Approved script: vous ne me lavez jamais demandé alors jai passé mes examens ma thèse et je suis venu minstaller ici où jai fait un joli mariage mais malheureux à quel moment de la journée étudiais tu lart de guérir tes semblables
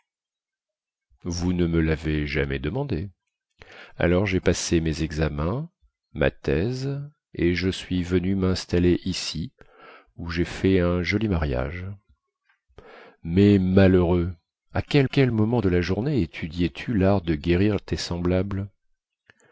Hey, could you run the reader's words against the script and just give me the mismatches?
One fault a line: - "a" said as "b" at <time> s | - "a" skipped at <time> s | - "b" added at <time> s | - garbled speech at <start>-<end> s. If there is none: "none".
- "quel" added at 15.0 s